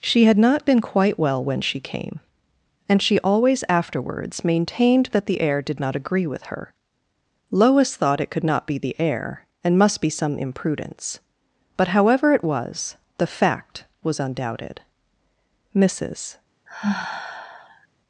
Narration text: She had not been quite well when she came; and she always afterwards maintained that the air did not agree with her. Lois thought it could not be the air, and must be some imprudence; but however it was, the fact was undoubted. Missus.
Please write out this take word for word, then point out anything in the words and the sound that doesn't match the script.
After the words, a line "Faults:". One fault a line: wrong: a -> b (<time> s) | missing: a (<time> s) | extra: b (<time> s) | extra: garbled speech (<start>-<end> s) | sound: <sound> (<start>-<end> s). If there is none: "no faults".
She had not been quite well when she came; and she always afterwards maintained that the air did not agree with her. Lois thought it could not be the air, and must be some imprudence; but however it was, the fact was undoubted. Missus.
Faults:
sound: sigh (16.7-17.9 s)